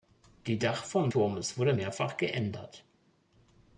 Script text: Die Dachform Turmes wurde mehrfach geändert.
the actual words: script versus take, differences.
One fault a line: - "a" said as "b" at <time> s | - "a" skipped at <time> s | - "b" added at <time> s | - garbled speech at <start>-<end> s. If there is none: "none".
none